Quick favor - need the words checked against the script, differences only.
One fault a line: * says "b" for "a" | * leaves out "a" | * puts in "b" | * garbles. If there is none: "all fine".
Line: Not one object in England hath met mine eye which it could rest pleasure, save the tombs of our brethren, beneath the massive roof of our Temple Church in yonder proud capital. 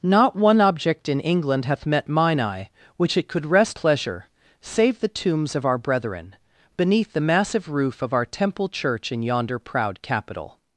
all fine